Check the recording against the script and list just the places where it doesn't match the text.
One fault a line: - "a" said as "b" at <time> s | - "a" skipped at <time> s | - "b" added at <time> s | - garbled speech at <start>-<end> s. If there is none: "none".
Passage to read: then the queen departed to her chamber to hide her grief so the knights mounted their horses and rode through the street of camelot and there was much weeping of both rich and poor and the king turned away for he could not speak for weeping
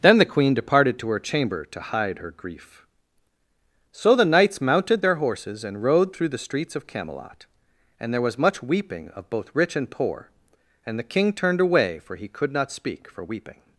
- "street" said as "streets" at 6.4 s